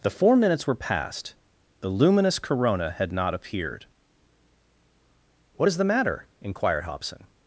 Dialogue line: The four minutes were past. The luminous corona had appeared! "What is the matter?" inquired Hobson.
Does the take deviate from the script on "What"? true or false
false